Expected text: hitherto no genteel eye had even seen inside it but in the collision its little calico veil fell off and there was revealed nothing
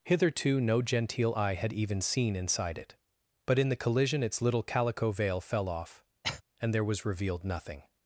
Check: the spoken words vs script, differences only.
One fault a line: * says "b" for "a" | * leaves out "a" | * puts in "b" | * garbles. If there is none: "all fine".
all fine